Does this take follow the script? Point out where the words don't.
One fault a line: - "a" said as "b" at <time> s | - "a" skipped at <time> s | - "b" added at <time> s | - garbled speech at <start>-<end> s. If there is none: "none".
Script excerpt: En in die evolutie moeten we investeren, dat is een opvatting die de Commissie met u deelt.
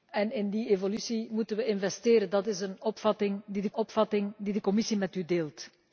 - "opvatting die de" added at 3.7 s